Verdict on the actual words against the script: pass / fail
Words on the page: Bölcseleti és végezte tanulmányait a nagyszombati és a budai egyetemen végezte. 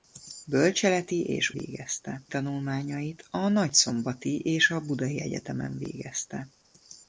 pass